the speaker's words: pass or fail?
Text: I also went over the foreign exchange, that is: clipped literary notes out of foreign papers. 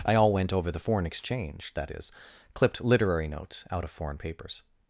fail